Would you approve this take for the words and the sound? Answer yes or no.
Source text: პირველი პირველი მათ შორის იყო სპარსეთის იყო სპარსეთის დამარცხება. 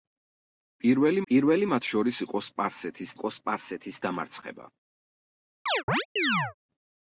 no